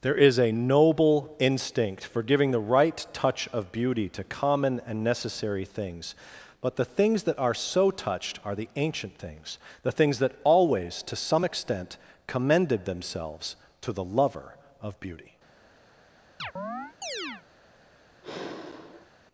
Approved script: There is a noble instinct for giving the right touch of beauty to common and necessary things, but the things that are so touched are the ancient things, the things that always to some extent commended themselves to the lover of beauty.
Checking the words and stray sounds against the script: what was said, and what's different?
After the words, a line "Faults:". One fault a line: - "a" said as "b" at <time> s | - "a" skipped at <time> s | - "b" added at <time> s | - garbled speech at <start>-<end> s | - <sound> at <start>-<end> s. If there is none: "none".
There is a noble instinct for giving the right touch of beauty to common and necessary things, but the things that are so touched are the ancient things, the things that always to some extent commended themselves to the lover of beauty.
Faults:
- chirp at 16.4-17.4 s
- sigh at 18.2-19.1 s